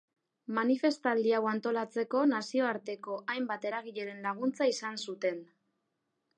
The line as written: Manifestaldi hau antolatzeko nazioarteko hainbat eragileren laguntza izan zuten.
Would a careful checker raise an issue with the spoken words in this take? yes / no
no